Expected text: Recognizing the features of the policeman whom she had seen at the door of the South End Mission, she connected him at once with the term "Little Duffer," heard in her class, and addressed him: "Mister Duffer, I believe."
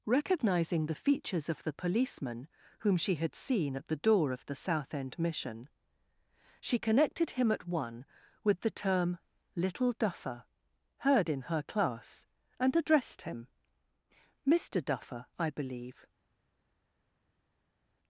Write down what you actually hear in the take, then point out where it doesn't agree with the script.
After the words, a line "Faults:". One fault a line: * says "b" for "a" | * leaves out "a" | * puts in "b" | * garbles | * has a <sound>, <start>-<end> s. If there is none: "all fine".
Recognizing the features of the policeman whom she had seen at the door of the South End Mission, she connected him at one with the term "Little Duffer," heard in her class, and addressed him: "Mister Duffer, I believe."
Faults:
* says "one" for "once"